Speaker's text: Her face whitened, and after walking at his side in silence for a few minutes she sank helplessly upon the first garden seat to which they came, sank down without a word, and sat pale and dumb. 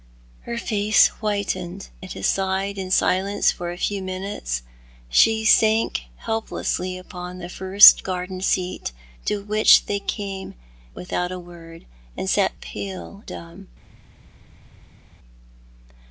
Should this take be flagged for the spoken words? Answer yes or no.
yes